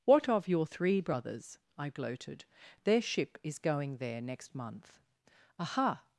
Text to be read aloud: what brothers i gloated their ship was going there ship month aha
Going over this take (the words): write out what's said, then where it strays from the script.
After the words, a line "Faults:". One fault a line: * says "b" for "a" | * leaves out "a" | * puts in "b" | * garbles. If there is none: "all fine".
what of your three brothers i gloated their ship is going there next month aha
Faults:
* puts in "of your three"
* says "is" for "was"
* says "next" for "ship"